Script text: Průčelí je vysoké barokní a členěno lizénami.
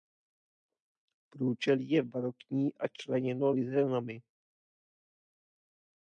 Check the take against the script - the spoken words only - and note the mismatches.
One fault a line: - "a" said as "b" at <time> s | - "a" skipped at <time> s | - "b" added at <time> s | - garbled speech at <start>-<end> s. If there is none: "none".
- "vysoké" skipped at 2.0 s